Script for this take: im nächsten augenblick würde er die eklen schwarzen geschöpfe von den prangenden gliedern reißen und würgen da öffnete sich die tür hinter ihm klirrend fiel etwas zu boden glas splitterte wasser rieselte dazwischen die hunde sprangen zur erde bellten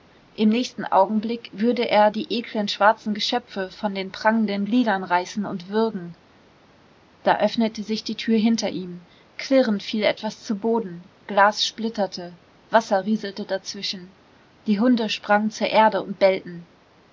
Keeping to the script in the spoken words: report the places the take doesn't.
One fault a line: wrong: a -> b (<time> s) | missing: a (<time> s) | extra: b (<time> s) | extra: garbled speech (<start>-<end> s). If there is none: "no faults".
extra: und (16.0 s)